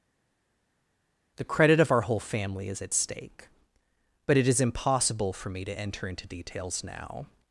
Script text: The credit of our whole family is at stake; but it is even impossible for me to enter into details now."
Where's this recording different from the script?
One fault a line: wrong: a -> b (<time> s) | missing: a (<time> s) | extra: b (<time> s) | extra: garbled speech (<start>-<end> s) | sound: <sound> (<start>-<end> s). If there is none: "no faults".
missing: even (4.6 s)